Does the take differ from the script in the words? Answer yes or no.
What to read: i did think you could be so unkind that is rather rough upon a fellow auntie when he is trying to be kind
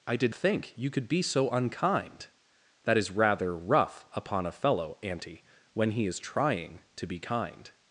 no